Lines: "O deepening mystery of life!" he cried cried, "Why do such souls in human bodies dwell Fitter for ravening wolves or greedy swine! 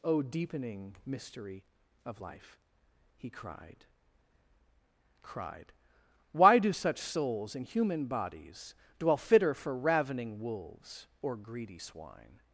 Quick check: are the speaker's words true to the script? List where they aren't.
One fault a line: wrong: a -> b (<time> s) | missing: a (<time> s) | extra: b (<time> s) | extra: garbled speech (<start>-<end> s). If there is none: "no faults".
no faults